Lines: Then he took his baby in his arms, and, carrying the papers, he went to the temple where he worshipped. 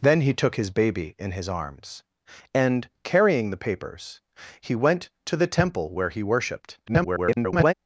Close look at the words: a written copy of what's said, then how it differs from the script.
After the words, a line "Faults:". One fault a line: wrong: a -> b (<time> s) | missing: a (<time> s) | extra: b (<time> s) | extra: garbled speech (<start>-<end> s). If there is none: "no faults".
Then he took his baby in his arms, and, carrying the papers, he went to the temple where he worshipped. [garbled]
Faults:
extra: garbled speech (6.9-7.7 s)